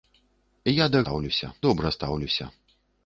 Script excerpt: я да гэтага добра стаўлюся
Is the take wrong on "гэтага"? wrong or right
wrong